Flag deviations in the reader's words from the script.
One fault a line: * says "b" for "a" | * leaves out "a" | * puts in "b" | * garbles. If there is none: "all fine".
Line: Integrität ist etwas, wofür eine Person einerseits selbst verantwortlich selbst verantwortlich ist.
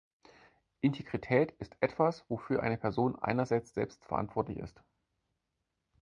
* leaves out "selbst verantwortlich"